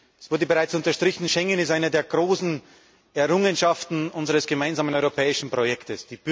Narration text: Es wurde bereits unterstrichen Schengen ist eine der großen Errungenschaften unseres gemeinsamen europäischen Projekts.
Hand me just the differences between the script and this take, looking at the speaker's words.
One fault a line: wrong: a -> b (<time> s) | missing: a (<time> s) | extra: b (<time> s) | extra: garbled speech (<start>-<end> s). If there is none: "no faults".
no faults